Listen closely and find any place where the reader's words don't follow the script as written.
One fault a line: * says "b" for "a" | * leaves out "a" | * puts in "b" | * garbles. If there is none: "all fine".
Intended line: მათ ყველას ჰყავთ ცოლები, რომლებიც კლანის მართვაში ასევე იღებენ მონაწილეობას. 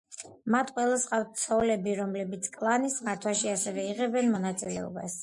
all fine